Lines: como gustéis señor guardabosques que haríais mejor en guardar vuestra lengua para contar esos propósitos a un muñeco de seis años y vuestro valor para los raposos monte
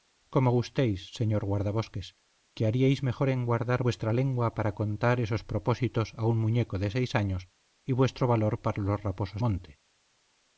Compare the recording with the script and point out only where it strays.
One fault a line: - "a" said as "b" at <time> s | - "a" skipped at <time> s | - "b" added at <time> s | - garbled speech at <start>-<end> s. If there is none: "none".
none